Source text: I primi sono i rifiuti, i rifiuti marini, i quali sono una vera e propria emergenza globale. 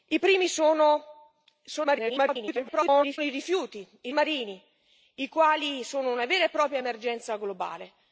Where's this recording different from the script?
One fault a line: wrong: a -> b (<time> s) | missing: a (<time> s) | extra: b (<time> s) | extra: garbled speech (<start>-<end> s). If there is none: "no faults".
extra: garbled speech (1.8-3.2 s)
missing: rifiuti (4.1 s)